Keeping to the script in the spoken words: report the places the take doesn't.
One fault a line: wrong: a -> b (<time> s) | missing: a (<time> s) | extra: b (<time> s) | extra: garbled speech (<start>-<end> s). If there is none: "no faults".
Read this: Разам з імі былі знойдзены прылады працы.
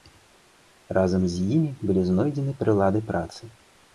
no faults